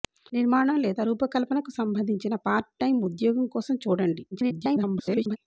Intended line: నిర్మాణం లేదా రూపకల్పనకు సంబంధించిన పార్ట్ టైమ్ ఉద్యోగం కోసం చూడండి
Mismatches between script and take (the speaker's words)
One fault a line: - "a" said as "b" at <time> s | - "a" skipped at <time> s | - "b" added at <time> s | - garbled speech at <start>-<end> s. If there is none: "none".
- garbled speech at 4.3-5.4 s